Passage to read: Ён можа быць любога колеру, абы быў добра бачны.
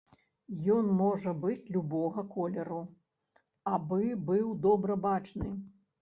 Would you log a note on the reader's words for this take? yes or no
no